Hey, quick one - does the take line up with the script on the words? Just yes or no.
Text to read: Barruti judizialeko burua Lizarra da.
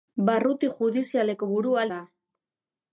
no